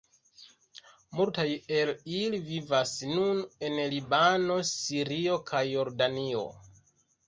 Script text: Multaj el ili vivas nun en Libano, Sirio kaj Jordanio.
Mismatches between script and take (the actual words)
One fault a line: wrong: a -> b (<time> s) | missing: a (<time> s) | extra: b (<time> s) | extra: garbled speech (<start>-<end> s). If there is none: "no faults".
no faults